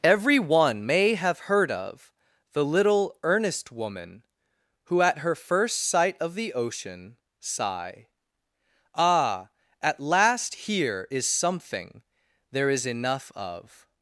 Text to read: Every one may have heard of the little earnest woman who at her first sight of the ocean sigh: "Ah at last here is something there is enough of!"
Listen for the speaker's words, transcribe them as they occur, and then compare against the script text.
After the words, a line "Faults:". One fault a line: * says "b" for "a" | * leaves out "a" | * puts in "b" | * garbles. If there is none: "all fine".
Every one may have heard of the little earnest woman who at her first sight of the ocean sigh: "Ah at last here is something there is enough of!"
Faults:
all fine